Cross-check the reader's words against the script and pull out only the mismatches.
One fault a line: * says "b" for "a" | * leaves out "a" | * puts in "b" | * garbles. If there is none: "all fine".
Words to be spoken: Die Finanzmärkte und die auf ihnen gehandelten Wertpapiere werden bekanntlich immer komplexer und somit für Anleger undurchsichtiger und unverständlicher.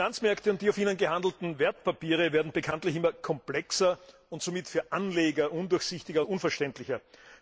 all fine